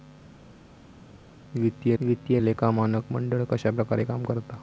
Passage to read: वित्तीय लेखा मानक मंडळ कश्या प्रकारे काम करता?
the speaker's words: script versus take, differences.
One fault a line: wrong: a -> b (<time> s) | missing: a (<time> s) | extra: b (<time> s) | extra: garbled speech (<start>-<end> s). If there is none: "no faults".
extra: वित्तीय (2.0 s)